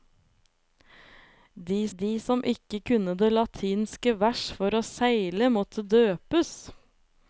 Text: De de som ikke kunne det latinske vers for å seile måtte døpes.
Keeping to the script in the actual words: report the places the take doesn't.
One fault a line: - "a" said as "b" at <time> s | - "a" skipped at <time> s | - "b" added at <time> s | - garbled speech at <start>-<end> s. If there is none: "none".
none